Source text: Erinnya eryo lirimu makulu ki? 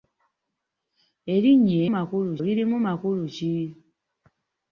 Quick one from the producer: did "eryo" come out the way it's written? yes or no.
no